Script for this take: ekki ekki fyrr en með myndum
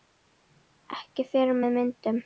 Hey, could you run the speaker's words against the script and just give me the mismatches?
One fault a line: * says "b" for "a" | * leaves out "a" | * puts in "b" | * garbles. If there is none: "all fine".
* leaves out "ekki"